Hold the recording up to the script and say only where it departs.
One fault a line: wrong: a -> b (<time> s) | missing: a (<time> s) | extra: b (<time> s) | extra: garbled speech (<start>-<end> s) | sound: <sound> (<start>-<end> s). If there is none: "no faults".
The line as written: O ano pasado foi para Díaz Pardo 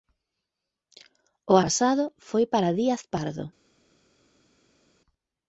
missing: ano (1.6 s)